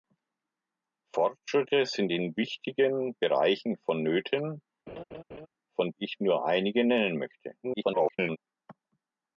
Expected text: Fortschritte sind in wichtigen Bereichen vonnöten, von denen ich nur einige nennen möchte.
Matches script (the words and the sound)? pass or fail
fail